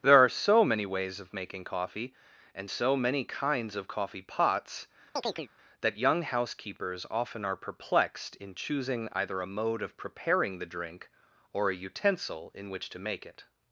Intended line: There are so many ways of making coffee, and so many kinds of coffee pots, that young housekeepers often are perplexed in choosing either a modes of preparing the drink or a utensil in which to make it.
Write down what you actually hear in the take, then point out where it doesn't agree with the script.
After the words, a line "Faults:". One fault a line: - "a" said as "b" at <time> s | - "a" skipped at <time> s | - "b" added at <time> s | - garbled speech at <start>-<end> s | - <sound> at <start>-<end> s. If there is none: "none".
There are so many ways of making coffee, and so many kinds of coffee pots, that young housekeepers often are perplexed in choosing either a mode of preparing the drink or a utensil in which to make it.
Faults:
- chirp at 5.2-5.5 s
- "modes" said as "mode" at 9.5 s